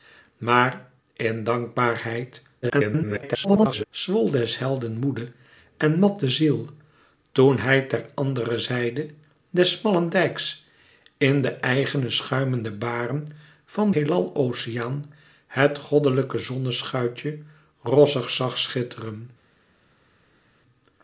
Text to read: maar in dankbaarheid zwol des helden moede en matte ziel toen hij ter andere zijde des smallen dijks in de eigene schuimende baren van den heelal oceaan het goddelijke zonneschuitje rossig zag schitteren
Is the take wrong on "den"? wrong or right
wrong